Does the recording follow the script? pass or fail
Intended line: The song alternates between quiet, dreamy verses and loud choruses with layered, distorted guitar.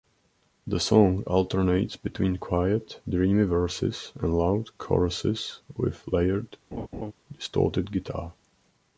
pass